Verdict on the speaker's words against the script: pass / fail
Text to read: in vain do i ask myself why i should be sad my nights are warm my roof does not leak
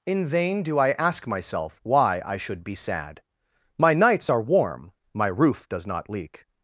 pass